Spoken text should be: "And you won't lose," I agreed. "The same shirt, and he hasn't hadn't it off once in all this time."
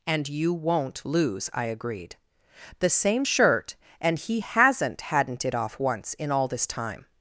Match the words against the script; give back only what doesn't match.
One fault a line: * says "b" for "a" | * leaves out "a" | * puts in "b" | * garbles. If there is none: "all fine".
all fine